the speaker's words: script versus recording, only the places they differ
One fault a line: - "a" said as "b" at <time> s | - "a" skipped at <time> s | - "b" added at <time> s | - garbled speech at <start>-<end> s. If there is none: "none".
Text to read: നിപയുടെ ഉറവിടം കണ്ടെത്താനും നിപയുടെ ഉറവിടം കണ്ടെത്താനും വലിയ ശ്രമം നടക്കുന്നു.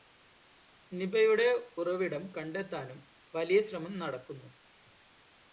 - "നിപയുടെ ഉറവിടം കണ്ടെത്താനും" skipped at 3.0 s